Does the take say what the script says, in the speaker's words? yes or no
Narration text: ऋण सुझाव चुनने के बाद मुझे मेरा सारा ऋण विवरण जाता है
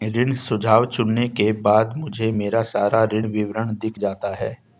no